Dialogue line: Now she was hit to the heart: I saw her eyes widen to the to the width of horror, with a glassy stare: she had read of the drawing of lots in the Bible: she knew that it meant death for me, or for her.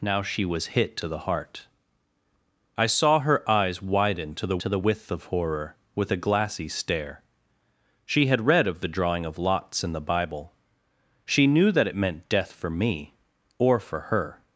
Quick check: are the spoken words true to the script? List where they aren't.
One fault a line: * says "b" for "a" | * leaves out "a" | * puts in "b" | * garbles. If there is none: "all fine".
all fine